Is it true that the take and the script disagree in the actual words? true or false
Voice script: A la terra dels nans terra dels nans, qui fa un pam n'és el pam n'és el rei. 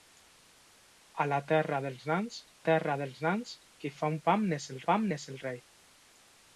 false